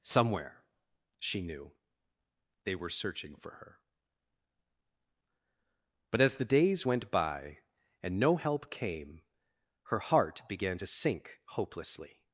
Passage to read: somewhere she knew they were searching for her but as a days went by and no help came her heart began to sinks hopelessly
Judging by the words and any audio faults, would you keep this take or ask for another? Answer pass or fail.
fail